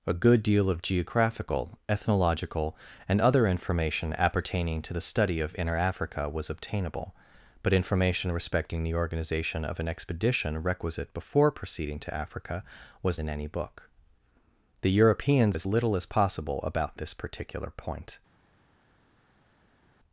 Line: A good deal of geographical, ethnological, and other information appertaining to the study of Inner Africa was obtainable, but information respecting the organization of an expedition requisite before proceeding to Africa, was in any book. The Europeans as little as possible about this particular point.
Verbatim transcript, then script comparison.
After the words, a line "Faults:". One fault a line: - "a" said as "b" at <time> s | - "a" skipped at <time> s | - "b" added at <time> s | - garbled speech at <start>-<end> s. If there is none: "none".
A good deal of geographical, ethnological, and other information appertaining to the study of Inner Africa was obtainable, but information respecting the organization of an expedition requisite before proceeding to Africa, was in any book. The Europeans as little as possible about this particular point.
Faults:
none